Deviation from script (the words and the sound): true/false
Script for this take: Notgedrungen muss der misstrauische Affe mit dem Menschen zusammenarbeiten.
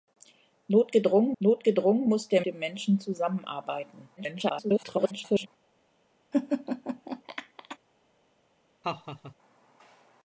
true